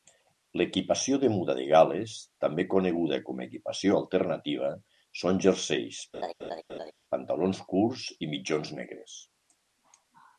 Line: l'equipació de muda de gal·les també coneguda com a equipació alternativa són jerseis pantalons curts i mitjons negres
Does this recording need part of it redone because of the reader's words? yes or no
no